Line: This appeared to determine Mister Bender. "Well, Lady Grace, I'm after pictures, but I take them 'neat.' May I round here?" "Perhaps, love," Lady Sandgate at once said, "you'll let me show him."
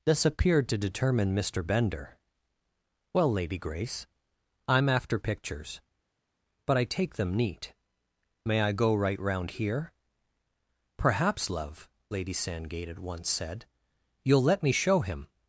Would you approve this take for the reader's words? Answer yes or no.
no